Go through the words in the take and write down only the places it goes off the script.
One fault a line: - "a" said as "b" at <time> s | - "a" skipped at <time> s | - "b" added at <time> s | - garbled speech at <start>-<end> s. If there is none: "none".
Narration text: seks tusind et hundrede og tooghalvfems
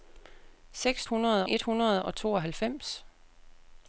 - "tusind" said as "hundrede" at 1.0 s